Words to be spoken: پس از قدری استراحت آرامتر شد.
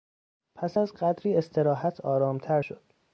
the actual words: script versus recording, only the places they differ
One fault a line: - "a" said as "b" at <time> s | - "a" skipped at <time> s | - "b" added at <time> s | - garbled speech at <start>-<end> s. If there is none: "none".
none